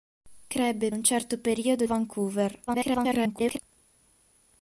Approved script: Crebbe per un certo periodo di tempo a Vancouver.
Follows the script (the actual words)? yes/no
no